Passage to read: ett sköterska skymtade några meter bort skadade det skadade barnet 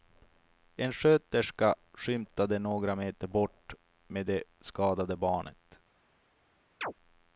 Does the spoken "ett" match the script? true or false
false